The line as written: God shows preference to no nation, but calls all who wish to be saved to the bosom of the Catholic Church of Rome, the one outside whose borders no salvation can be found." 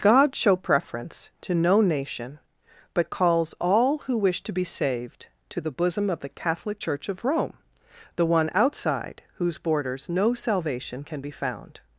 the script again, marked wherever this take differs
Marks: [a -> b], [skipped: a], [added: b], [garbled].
God [shows -> show] preference to no nation, but calls all who wish to be saved to the bosom of the Catholic Church of Rome, the one outside whose borders no salvation can be found."